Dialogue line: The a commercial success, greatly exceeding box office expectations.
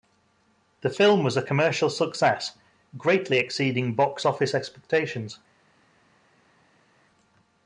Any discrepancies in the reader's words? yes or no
yes